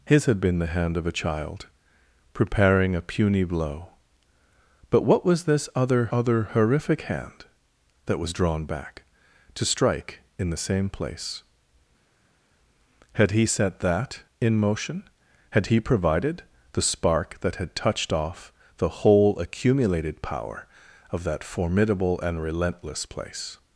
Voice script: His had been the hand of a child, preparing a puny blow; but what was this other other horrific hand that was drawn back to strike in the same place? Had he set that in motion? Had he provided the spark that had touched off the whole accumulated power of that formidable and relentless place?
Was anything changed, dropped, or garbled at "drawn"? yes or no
no